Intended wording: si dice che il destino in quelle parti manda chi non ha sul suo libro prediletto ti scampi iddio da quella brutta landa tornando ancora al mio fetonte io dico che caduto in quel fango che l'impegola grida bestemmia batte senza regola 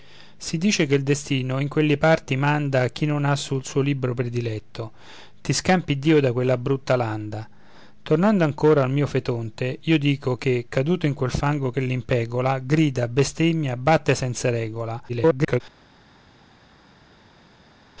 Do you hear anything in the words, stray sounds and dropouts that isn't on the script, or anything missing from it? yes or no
yes